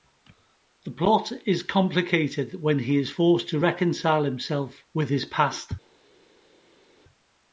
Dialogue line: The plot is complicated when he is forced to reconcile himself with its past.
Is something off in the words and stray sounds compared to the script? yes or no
yes